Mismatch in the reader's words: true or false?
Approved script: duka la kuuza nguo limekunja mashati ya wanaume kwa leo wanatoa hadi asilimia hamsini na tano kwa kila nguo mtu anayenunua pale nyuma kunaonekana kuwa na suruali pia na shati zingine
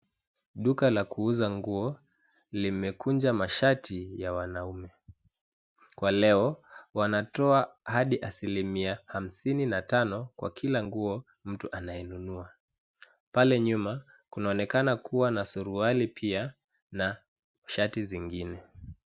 false